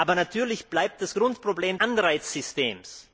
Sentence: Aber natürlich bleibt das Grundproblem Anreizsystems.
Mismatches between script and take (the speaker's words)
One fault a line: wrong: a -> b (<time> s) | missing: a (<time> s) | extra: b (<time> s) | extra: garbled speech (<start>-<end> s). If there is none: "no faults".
no faults